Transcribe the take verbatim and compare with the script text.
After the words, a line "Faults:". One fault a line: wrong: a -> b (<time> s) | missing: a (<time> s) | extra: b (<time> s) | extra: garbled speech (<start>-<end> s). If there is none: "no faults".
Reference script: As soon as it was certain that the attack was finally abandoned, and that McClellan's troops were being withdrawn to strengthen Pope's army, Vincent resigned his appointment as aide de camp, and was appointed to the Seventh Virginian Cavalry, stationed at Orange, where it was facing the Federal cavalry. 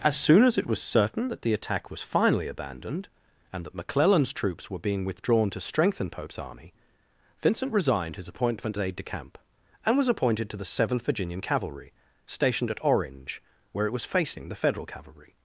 As soon as it was certain that the attack was finally abandoned, and that McClellan's troops were being withdrawn to strengthen Pope's army, Vincent resigned his appointment aide de camp, and was appointed to the Seventh Virginian Cavalry, stationed at Orange, where it was facing the Federal cavalry.
Faults:
missing: as (8.8 s)